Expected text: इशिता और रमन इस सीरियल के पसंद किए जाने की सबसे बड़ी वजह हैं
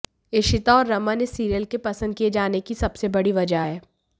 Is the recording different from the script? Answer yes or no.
no